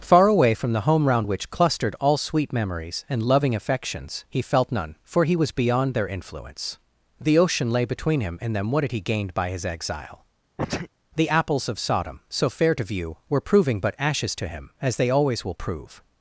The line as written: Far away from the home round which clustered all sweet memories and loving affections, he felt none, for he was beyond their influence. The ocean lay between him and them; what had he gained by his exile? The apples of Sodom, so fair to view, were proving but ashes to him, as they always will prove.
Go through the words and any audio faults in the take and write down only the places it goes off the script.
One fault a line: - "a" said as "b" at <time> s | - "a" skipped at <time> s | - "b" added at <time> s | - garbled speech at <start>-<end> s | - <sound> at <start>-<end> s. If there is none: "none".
- sneeze at 10.6-10.9 s